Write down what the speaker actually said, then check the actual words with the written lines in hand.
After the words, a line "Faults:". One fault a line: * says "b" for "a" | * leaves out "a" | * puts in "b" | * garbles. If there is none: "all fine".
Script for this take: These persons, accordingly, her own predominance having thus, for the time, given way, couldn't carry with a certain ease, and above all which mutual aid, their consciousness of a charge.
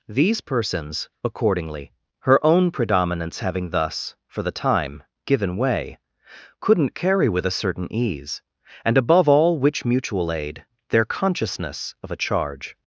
These persons, accordingly, her own predominance having thus, for the time, given way, couldn't carry with a certain ease, and above all which mutual aid, their consciousness of a charge.
Faults:
all fine